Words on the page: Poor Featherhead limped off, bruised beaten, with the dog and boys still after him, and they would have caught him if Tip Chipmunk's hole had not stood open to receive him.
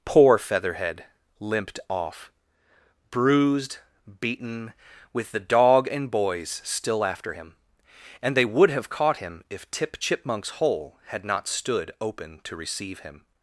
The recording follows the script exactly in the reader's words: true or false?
true